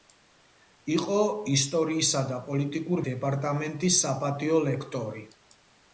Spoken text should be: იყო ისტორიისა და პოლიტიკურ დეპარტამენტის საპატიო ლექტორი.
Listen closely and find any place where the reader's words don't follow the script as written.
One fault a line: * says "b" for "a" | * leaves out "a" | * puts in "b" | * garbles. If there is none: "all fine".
all fine